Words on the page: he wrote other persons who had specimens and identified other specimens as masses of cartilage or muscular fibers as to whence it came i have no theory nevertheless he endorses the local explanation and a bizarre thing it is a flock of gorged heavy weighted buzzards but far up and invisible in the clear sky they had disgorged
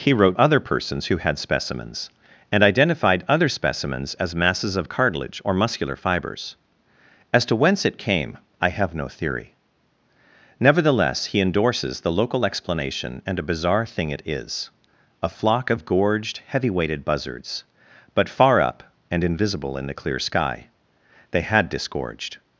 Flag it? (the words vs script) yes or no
no